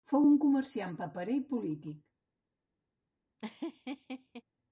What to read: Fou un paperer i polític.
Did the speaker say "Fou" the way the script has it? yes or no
yes